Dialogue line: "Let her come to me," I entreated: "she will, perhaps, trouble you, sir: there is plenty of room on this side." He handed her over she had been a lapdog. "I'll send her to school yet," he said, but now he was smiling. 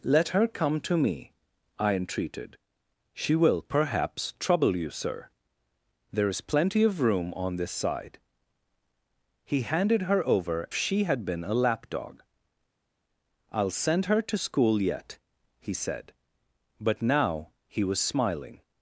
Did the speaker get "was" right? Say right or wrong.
right